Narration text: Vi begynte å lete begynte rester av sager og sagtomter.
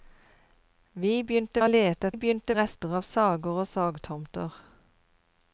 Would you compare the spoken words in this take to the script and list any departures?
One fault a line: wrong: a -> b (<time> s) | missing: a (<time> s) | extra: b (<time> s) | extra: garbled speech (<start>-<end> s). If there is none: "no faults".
no faults